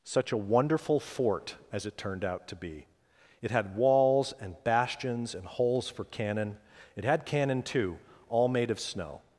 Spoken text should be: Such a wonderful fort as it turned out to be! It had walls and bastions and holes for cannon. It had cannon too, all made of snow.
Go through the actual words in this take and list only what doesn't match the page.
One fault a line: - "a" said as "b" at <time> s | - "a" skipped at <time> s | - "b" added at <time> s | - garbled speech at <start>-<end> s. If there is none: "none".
none